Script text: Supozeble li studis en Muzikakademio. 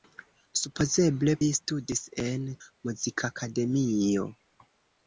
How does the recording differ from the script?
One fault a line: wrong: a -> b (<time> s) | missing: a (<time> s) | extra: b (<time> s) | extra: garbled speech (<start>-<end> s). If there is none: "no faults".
no faults